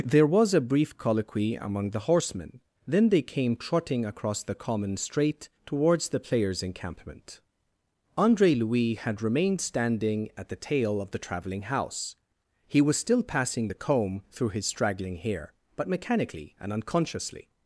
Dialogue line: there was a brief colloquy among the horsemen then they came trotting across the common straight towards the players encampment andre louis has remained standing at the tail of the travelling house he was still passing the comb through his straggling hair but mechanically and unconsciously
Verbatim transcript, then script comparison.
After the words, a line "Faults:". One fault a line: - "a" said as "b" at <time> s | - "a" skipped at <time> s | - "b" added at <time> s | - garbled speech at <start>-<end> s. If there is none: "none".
there was a brief colloquy among the horsemen then they came trotting across the common straight towards the players encampment andre louis had remained standing at the tail of the travelling house he was still passing the comb through his straggling hair but mechanically and unconsciously
Faults:
- "has" said as "had" at 8.9 s